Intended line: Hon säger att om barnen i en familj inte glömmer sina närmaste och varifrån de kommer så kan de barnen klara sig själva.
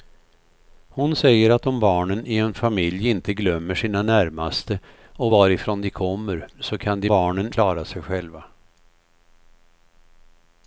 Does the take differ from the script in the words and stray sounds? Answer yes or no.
no